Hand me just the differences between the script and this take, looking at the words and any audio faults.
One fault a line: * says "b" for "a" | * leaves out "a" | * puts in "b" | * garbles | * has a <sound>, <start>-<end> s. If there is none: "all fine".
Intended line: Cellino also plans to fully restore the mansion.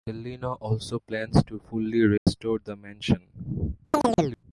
* has a dropout, 2.2-2.3 s
* has a chirp, 3.9-4.4 s